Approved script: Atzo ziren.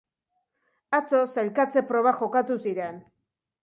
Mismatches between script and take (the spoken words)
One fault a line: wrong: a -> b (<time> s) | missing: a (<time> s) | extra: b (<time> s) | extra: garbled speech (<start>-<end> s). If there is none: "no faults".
extra: sailkatze probak jokatu (1.4 s)